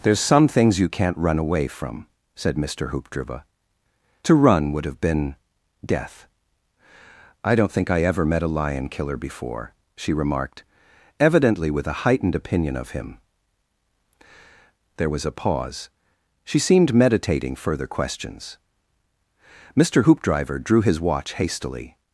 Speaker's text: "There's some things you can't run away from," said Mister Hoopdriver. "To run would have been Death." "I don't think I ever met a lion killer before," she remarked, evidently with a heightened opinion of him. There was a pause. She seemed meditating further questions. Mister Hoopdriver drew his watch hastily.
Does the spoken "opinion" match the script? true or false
true